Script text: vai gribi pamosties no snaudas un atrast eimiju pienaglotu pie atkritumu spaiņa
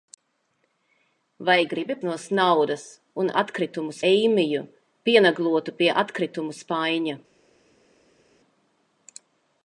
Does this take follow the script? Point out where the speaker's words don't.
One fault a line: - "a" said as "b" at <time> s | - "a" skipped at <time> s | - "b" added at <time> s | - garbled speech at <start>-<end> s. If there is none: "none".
- "pamosties" skipped at 1.9 s
- "atrast" said as "atkritumu" at 3.4 s